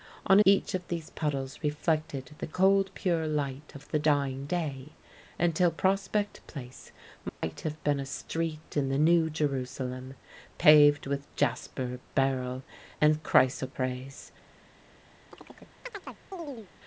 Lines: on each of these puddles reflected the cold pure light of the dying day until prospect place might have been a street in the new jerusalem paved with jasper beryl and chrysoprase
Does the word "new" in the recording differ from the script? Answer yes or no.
no